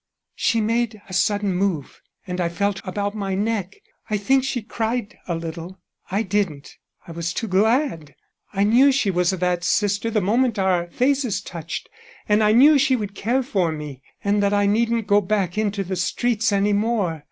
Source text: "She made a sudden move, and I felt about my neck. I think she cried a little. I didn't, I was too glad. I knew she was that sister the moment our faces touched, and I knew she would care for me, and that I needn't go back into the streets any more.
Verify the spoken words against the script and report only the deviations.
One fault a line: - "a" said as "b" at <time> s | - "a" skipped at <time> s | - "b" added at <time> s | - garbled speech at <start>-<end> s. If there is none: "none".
none